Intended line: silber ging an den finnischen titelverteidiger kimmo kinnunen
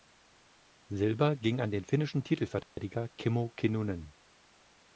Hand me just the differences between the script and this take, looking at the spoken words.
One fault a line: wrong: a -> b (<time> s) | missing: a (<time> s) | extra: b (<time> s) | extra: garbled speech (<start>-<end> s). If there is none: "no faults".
no faults